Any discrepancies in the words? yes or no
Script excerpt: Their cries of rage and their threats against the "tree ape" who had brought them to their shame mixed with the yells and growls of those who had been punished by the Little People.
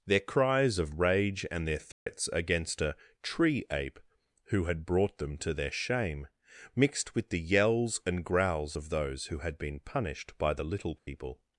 yes